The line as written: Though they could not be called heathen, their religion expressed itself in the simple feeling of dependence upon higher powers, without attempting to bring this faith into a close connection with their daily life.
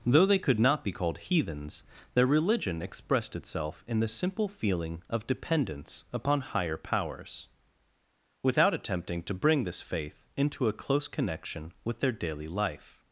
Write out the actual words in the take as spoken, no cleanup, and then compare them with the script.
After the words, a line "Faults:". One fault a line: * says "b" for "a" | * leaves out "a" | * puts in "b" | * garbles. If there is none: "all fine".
Though they could not be called heathens, their religion expressed itself in the simple feeling of dependence upon higher powers, without attempting to bring this faith into a close connection with their daily life.
Faults:
* says "heathens" for "heathen"